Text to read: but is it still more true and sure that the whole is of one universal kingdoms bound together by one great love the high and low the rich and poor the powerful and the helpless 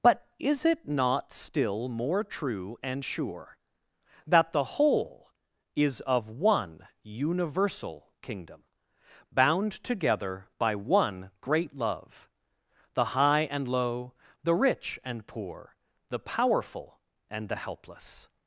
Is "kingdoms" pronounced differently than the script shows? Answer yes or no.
yes